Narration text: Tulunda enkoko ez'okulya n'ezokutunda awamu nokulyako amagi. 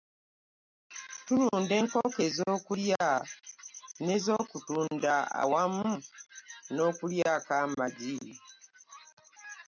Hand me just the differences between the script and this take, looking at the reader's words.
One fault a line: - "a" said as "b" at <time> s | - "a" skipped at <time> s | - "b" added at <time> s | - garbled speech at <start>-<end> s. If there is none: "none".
none